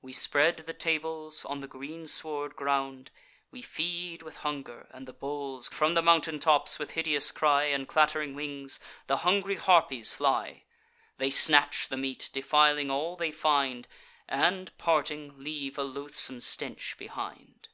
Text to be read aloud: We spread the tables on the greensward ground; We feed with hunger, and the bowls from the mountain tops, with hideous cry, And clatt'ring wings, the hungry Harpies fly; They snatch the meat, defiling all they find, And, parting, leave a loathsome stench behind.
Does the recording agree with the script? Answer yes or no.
yes